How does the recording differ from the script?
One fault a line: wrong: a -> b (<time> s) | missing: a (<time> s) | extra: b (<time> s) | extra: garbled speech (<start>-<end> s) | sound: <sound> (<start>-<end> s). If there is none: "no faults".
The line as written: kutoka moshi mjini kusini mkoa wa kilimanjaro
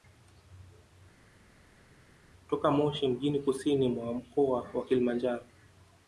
extra: mwa (3.9 s)